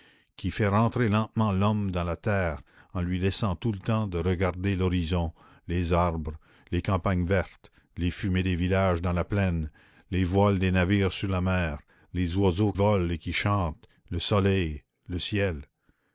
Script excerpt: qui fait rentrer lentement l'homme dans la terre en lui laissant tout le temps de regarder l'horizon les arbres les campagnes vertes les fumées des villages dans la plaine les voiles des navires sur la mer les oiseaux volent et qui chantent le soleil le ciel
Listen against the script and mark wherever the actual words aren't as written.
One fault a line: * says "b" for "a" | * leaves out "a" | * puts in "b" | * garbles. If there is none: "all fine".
all fine